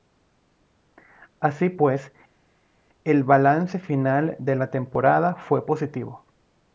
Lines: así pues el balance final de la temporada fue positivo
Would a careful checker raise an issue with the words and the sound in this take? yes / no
no